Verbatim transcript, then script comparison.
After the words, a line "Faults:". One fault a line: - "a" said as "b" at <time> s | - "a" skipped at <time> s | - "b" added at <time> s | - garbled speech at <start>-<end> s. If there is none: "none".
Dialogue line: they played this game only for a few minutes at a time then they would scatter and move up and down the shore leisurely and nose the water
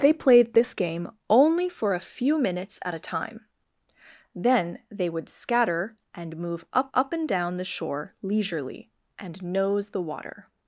they played this game only for a few minutes at a time then they would scatter and move up up and down the shore leisurely and nose the water
Faults:
- "up" added at 6.9 s